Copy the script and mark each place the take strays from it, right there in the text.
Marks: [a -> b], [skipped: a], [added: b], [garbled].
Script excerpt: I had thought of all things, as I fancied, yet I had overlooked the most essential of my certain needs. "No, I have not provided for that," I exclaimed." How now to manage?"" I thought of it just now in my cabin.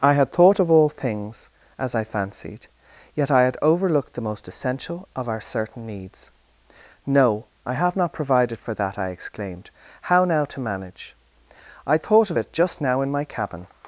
I had thought of all things, as I fancied, yet I had overlooked the most essential of [my -> our] certain needs. "No, I have not provided for that," I exclaimed." How now to manage?"" I thought of it just now in my cabin.